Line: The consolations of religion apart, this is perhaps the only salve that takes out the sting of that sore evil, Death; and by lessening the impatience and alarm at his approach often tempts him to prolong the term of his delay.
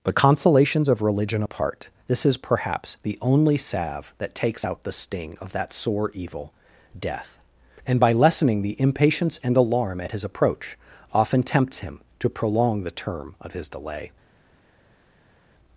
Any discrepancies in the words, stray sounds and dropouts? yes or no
yes